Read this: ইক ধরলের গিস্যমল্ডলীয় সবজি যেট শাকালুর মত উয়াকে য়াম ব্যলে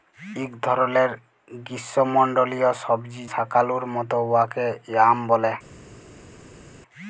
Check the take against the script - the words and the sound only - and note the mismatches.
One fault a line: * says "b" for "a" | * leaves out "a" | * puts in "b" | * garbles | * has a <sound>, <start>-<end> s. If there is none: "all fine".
* leaves out "যেট"